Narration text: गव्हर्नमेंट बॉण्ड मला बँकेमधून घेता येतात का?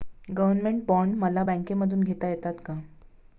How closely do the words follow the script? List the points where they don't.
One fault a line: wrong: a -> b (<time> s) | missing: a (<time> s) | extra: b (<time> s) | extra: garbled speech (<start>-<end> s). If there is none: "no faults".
no faults